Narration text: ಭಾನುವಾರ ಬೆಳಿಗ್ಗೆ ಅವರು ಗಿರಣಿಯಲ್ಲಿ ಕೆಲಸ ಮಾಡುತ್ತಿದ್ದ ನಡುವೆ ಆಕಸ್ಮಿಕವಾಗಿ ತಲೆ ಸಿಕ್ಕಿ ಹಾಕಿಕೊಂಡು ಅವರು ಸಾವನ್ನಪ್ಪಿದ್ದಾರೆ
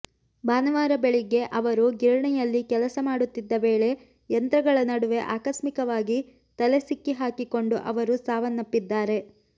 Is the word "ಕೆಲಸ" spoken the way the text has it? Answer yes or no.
yes